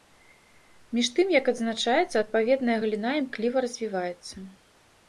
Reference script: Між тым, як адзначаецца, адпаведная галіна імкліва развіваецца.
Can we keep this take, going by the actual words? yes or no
yes